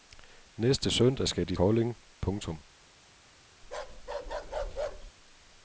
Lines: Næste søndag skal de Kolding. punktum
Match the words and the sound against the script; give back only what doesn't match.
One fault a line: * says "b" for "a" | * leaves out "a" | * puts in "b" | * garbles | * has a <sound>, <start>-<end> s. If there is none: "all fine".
* has a bark, 3.6-5.1 s